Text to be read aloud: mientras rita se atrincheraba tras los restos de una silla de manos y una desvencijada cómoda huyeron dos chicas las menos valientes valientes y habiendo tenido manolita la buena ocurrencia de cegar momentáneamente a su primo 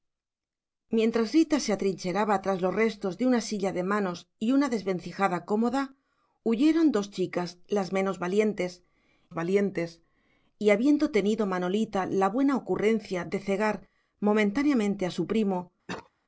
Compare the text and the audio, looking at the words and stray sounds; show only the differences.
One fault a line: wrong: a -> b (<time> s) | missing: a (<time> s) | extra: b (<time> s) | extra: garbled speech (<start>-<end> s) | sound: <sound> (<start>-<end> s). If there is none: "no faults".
sound: cough (15.9-16.1 s)